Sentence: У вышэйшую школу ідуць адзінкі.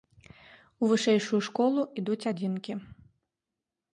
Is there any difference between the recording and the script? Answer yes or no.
no